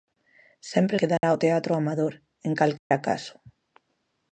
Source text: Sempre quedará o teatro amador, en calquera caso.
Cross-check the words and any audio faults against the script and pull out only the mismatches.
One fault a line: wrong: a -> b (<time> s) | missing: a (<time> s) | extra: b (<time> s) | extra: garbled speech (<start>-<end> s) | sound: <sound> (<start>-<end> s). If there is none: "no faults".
sound: dropout (1.2-1.2 s)
sound: dropout (2.8-2.9 s)